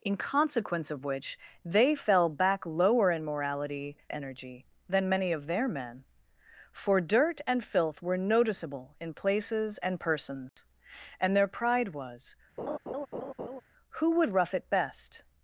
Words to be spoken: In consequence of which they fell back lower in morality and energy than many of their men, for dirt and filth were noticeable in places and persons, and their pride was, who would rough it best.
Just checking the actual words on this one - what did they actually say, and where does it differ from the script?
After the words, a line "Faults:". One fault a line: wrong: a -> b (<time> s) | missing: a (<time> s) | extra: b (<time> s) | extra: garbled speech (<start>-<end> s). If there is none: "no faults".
In consequence of which they fell back lower in morality energy than many of their men, for dirt and filth were noticeable in places and persons, and their pride was, who would rough it best.
Faults:
missing: and (4.0 s)